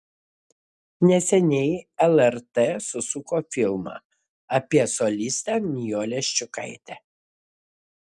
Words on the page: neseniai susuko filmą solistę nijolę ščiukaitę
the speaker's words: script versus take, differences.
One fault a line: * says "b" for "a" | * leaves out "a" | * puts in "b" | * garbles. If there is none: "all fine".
* puts in "lrt"
* puts in "apie"